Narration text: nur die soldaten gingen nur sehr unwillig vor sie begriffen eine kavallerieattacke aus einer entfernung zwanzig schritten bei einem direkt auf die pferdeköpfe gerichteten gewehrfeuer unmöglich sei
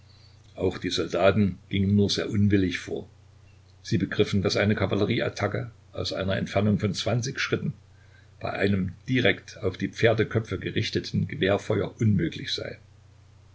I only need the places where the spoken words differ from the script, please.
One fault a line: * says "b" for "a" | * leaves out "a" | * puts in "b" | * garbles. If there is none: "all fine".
* says "auch" for "nur"
* puts in "daß"
* puts in "von"